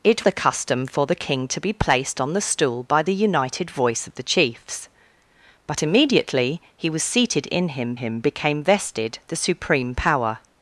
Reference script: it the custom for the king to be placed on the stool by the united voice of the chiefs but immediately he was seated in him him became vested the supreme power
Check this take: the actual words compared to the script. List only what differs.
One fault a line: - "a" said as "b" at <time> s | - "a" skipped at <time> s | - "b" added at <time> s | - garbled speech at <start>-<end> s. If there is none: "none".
none